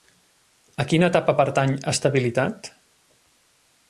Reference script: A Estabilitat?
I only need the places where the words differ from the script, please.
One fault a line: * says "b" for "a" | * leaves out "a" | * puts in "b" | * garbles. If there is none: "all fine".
* puts in "quina etapa pertany"